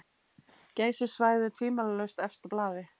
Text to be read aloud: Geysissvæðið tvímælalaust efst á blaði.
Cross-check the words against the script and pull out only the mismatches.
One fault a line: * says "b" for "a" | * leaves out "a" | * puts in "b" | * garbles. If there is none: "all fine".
all fine